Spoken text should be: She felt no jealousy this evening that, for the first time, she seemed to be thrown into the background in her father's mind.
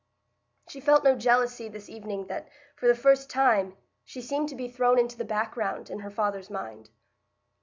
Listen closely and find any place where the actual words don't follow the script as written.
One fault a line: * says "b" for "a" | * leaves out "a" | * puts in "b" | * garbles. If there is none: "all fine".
all fine